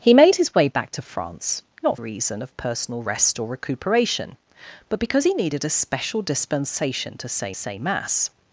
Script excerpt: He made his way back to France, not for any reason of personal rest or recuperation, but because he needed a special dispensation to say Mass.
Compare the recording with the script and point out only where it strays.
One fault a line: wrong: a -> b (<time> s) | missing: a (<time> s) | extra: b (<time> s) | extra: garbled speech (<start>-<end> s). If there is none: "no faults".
missing: for any (2.0 s)
extra: say (7.5 s)